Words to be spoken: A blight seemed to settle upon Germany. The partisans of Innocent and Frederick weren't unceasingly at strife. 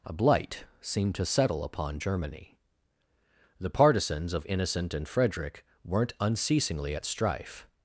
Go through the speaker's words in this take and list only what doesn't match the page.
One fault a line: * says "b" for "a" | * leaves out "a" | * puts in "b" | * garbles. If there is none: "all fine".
all fine